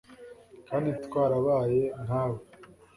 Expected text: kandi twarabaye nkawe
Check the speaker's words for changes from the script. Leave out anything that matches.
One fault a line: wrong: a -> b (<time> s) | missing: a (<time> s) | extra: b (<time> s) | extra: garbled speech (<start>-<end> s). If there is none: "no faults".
no faults